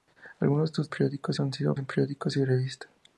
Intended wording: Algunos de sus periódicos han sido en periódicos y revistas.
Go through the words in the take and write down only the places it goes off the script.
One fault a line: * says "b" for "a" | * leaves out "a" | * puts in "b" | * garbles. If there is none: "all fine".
all fine